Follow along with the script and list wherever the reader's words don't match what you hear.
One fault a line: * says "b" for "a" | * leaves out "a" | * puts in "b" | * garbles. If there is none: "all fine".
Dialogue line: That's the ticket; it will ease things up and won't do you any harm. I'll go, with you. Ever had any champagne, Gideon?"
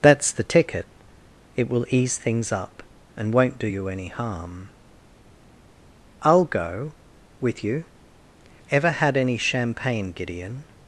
all fine